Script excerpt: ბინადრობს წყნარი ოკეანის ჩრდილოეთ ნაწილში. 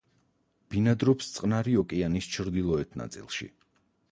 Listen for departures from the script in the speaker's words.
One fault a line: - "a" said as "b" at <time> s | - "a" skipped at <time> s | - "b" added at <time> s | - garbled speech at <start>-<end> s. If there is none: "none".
none